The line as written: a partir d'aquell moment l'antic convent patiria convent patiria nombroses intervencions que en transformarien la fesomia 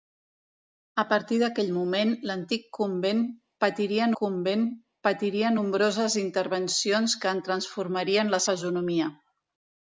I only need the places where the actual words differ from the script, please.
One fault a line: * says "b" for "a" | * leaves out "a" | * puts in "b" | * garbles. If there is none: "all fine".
all fine